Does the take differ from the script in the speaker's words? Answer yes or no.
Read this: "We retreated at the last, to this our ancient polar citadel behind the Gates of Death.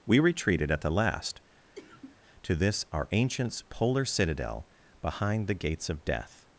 yes